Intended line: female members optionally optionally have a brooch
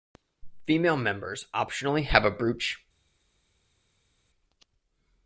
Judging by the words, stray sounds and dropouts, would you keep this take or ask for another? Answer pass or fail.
fail